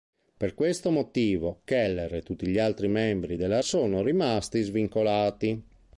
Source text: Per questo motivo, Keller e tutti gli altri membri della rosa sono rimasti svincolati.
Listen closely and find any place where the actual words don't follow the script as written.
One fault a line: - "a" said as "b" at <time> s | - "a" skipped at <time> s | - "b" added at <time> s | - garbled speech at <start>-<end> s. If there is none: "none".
- "rosa" skipped at 3.6 s